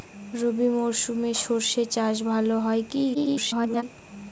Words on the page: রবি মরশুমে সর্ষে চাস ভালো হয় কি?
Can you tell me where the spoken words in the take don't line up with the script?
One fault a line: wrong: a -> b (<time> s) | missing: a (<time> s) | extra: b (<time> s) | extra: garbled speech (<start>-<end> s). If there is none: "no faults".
extra: garbled speech (3.1-3.8 s)